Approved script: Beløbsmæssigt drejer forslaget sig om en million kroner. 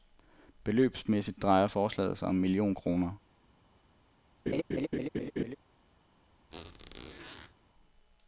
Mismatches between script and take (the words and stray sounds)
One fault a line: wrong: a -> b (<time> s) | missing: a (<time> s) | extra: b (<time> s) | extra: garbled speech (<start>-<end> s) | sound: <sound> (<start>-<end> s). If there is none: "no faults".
sound: laugh (4.5-5.6 s)
sound: squeak (6.5-7.5 s)